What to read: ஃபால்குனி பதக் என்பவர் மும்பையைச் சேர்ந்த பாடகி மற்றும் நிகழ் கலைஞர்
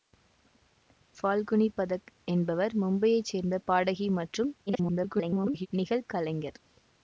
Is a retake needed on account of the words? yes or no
yes